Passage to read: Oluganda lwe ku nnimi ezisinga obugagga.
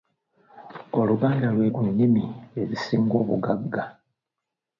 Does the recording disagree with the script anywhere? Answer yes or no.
no